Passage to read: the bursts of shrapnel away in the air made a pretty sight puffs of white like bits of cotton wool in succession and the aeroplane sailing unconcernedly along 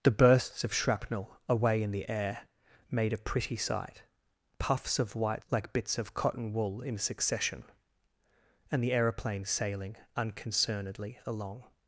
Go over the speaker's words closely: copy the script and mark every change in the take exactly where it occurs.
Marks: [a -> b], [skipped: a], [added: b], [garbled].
the bursts of shrapnel away in the air made a pretty sight puffs of white like bits of cotton wool in succession and the aeroplane sailing unconcernedly along